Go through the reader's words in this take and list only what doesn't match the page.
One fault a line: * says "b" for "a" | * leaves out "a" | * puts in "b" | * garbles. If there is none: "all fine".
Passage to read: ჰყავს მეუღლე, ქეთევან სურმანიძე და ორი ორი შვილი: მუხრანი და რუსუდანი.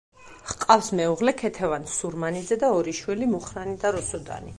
* leaves out "ორი"